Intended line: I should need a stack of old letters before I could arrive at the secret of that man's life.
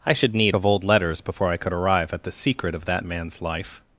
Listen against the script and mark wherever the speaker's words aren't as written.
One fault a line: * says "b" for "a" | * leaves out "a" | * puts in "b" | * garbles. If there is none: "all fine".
* leaves out "a stack"